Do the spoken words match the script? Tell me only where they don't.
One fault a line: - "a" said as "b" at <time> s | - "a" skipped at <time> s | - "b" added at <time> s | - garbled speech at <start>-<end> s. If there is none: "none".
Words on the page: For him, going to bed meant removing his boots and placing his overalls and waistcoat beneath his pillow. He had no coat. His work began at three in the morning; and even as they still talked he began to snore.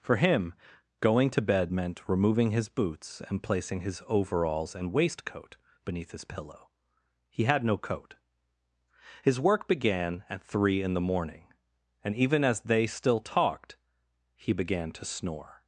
none